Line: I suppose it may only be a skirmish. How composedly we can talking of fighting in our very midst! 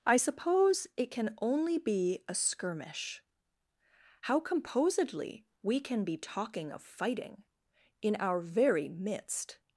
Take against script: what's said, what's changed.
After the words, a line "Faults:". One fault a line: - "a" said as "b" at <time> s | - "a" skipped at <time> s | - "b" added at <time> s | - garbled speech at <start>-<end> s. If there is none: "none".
I suppose it can only be a skirmish. How composedly we can be talking of fighting in our very midst!
Faults:
- "may" said as "can" at 1.1 s
- "be" added at 6.0 s